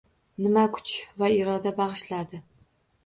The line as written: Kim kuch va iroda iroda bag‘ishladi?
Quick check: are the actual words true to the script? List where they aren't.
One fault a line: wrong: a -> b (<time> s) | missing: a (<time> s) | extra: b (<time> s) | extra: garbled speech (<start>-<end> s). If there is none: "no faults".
wrong: Kim -> Nima (0.5 s)
missing: iroda (1.8 s)